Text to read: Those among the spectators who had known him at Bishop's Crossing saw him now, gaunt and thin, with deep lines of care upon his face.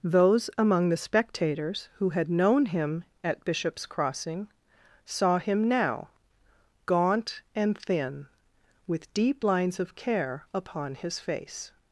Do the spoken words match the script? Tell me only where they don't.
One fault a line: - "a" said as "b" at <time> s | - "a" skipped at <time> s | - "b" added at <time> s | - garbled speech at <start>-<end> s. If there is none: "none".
none